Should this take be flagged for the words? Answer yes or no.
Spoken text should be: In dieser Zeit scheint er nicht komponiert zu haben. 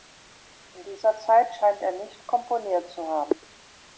no